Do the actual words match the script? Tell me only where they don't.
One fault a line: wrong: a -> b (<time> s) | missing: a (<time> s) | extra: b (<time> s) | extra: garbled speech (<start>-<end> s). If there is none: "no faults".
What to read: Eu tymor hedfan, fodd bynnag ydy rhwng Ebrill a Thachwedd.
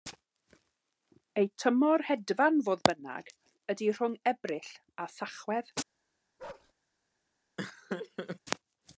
no faults